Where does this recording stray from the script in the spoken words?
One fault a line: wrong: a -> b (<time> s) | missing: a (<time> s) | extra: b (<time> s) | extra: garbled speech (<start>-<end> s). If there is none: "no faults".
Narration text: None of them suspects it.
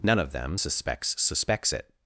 extra: suspects (1.2 s)